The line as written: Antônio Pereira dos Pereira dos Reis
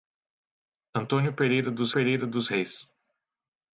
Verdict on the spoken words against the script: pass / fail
pass